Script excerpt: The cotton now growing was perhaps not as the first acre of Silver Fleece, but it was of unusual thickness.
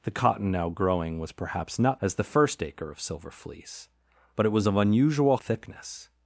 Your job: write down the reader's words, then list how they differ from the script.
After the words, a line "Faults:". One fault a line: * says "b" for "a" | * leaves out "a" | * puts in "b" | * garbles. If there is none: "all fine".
The cotton now growing was perhaps not as the first acre of Silver Fleece, but it was of unusual thickness.
Faults:
all fine